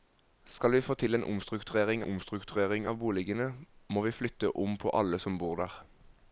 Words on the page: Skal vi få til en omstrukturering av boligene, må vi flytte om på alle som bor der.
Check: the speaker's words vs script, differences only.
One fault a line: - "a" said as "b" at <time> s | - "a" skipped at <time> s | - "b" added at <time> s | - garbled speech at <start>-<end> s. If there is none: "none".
- "omstrukturering" added at 2.0 s